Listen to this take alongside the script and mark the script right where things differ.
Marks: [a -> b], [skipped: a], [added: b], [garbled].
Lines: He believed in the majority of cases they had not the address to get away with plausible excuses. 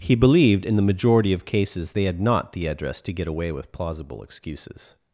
He believed in the majority of cases they had not the address to get away with plausible excuses.